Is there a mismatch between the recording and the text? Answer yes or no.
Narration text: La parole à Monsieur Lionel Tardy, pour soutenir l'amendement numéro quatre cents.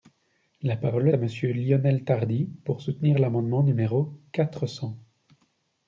no